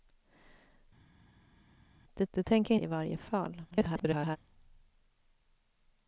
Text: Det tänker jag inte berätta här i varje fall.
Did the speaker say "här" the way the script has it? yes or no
no